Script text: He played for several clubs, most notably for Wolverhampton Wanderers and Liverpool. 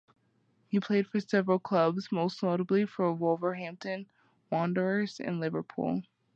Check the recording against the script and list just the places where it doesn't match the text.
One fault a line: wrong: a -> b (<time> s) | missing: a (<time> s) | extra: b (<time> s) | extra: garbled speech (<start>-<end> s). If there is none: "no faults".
no faults